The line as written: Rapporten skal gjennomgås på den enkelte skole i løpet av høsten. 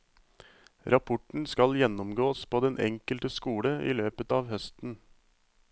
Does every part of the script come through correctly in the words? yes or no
yes